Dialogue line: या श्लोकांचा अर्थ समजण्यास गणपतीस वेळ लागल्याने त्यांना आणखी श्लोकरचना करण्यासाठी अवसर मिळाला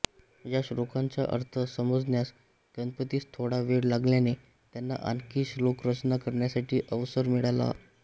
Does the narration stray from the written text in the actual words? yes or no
yes